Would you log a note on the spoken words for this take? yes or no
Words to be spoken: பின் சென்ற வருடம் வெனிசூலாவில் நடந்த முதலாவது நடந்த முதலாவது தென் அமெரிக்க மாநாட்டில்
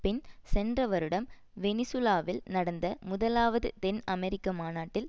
yes